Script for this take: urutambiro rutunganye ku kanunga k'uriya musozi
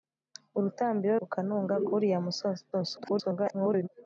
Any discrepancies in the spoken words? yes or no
yes